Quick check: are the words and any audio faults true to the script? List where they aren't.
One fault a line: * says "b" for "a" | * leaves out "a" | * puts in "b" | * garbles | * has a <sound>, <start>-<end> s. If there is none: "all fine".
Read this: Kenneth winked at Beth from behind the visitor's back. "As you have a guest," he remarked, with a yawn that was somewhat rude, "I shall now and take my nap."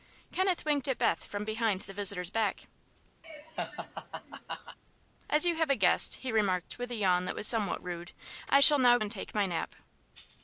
* has a laugh, 3.2-4.8 s